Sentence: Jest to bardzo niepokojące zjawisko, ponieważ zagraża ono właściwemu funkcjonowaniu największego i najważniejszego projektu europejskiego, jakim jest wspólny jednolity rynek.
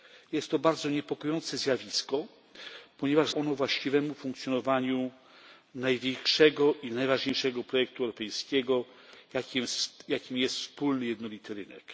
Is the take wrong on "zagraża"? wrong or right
wrong